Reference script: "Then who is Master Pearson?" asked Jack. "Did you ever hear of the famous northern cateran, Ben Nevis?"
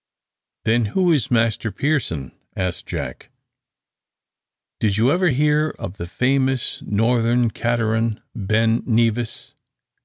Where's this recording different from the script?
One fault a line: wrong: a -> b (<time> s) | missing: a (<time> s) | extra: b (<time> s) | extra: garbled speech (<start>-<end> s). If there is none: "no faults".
no faults